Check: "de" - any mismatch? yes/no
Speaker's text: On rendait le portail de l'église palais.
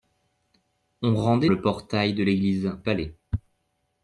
no